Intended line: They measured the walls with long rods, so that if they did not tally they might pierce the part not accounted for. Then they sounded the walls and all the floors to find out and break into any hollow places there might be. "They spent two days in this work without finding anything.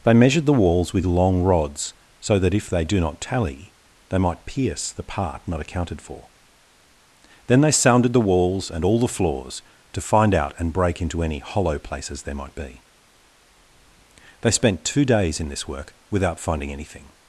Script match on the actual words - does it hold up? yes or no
no